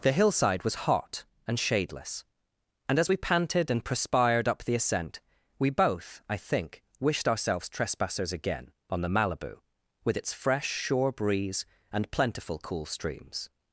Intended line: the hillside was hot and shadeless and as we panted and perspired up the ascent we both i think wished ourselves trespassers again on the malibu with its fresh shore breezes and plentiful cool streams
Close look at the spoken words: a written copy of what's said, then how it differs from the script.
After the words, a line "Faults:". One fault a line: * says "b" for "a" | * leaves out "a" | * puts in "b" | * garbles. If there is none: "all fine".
the hillside was hot and shadeless and as we panted and perspired up the ascent we both i think wished ourselves trespassers again on the malibu with its fresh shore breeze and plentiful cool streams
Faults:
* says "breeze" for "breezes"